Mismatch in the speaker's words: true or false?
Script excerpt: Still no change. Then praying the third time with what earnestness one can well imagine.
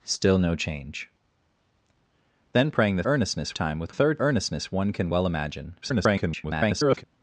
true